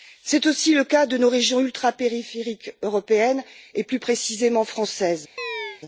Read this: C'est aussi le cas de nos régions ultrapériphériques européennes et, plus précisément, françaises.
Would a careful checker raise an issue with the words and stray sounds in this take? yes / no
yes